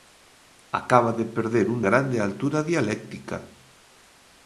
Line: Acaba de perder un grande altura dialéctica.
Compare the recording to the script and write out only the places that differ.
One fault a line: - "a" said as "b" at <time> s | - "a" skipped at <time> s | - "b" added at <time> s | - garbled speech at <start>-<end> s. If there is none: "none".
none